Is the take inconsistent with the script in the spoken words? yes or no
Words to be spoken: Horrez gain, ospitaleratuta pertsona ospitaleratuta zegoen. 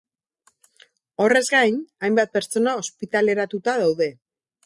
yes